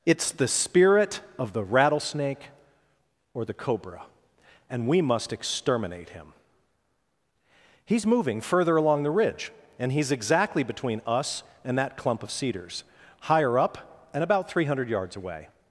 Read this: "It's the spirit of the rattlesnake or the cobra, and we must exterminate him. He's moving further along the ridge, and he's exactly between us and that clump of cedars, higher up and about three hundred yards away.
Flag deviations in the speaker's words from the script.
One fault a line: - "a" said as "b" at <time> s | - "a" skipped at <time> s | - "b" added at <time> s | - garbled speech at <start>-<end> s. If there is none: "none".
none